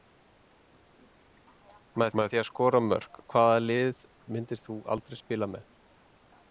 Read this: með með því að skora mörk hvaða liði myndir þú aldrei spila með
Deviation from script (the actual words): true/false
false